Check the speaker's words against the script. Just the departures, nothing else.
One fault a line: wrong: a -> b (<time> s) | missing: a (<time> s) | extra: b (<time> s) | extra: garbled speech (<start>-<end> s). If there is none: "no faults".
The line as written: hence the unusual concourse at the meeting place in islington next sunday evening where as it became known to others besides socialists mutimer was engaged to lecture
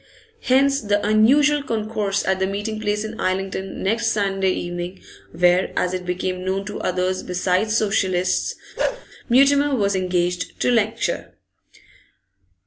no faults